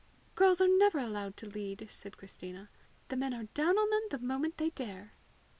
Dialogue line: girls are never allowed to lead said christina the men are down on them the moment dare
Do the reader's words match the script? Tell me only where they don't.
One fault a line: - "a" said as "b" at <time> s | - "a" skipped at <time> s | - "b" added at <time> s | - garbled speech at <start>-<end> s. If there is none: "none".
- "they" added at 4.6 s